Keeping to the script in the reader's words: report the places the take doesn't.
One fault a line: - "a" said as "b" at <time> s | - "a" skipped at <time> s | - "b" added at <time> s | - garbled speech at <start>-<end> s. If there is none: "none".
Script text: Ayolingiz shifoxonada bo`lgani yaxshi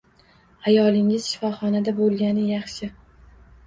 none